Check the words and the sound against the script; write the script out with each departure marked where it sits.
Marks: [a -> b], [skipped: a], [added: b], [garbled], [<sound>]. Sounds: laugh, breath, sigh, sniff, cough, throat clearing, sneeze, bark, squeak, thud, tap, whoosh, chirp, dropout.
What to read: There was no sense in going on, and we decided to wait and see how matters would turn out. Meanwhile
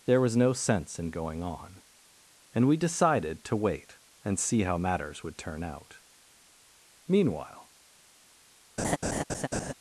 There was no sense in going on, and we decided to wait and see how matters would turn out. Meanwhile [laugh]